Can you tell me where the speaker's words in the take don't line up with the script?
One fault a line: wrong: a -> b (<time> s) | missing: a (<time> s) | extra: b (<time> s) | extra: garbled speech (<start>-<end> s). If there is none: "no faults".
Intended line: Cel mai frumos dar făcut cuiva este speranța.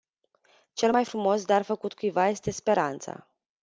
no faults